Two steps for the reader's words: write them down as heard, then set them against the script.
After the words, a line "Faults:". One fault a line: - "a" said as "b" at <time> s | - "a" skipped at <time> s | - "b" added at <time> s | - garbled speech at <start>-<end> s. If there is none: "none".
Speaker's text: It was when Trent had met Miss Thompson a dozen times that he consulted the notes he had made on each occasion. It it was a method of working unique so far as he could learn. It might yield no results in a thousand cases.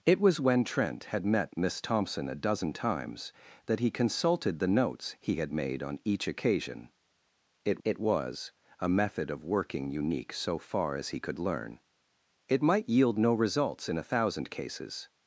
It was when Trent had met Miss Thompson a dozen times that he consulted the notes he had made on each occasion. It it was a method of working unique so far as he could learn. It might yield no results in a thousand cases.
Faults:
none